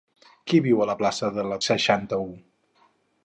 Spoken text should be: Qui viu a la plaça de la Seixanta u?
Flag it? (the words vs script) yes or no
no